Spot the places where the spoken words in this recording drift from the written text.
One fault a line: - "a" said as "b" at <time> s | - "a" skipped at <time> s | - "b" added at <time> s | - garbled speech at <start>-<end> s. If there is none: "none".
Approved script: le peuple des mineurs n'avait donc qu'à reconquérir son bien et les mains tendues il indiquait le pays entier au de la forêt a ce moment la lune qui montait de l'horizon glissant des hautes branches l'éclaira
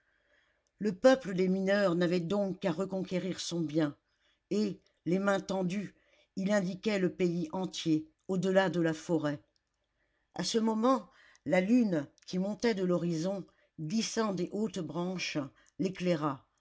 - "delà" added at 8.4 s